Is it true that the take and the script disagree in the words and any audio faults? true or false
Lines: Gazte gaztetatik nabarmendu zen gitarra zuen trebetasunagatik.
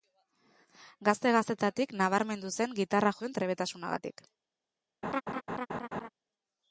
true